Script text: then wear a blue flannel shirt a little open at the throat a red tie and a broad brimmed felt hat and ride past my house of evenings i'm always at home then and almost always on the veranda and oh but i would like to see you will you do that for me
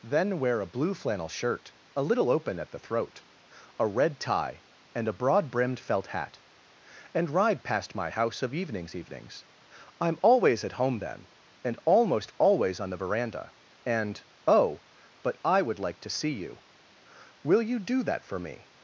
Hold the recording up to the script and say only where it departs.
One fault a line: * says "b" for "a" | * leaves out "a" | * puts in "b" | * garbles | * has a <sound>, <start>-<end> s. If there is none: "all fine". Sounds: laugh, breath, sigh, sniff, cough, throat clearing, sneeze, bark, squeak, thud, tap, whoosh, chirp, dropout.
* puts in "evenings"